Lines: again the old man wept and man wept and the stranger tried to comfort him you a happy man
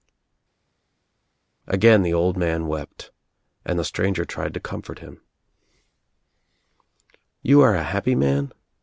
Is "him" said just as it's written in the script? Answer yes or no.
yes